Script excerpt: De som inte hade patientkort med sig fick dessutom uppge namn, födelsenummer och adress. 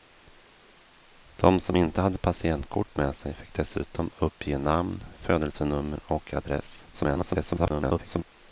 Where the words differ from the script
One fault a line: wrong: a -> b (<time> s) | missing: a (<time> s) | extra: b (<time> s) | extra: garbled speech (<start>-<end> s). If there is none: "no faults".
extra: garbled speech (6.9-8.2 s)